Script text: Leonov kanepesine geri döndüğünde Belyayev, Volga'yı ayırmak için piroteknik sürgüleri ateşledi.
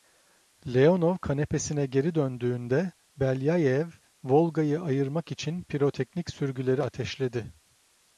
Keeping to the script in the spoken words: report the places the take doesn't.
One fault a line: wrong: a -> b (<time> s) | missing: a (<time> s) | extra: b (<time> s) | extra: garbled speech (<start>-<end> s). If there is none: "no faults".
no faults